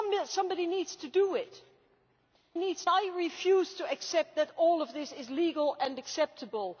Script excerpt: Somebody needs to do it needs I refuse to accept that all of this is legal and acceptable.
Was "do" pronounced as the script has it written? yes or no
yes